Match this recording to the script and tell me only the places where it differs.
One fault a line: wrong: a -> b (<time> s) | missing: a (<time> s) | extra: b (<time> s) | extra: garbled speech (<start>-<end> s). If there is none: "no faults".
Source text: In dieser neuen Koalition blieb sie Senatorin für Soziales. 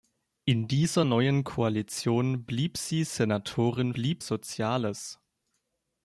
wrong: für -> blieb (3.9 s)